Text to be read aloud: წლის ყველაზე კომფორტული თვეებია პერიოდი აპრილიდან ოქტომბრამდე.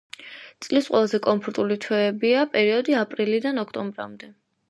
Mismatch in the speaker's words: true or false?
false